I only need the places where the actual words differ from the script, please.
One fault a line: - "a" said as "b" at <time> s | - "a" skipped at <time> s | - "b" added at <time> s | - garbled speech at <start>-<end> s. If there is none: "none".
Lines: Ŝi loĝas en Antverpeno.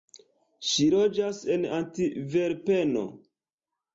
none